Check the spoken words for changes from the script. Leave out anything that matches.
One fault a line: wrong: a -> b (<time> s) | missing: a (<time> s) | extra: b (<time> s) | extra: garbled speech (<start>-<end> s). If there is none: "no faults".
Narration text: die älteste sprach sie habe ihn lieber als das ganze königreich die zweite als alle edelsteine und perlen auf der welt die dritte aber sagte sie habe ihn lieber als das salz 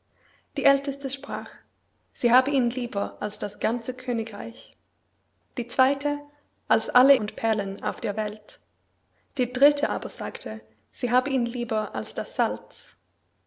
missing: edelsteine (7.2 s)